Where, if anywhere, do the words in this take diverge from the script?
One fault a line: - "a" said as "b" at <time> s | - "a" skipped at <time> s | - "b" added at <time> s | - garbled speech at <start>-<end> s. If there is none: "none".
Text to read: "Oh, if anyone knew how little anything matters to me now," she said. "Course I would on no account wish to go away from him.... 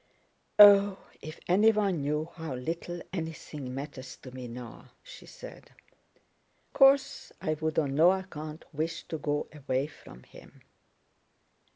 none